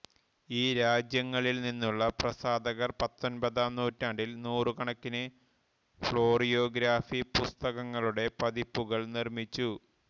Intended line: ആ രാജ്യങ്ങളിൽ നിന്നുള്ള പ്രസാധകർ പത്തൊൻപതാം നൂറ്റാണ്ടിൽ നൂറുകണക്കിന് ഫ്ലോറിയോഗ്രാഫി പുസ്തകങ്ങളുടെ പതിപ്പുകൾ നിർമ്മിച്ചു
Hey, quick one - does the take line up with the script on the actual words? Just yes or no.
no